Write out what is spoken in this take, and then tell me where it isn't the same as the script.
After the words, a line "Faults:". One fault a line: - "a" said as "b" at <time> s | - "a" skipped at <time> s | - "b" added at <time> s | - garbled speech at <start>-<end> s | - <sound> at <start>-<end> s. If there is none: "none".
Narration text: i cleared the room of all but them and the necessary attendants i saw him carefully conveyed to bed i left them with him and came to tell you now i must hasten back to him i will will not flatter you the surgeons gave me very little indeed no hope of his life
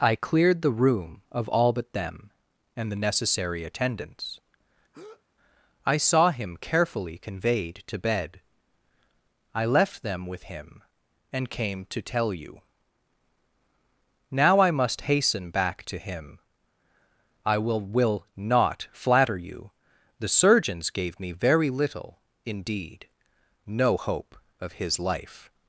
i cleared the room of all but them and the necessary attendants i saw him carefully conveyed to bed i left them with him and came to tell you now i must hasten back to him i will will not flatter you the surgeons gave me very little indeed no hope of his life
Faults:
- breath at 4.9-5.2 s